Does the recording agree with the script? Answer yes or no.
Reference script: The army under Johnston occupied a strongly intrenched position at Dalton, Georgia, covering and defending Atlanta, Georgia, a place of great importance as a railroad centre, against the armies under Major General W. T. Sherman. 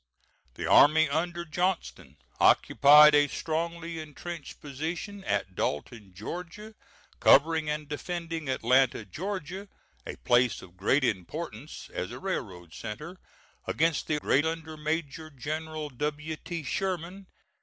no